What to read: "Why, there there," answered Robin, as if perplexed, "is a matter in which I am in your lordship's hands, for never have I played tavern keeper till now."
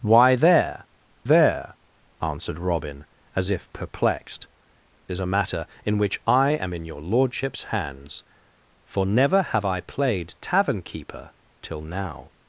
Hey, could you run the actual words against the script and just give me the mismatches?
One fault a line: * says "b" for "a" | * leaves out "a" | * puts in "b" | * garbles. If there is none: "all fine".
all fine